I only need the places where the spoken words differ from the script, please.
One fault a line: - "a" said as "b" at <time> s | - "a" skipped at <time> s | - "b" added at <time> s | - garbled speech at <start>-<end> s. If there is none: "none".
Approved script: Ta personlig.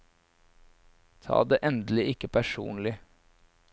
- "det endelig ikke" added at 1.4 s